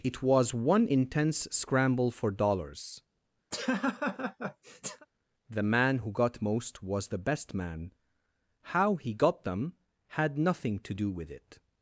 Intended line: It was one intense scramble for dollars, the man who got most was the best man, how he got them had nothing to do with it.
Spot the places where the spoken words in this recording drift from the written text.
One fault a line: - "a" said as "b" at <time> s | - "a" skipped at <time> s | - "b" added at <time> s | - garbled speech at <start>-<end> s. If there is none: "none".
none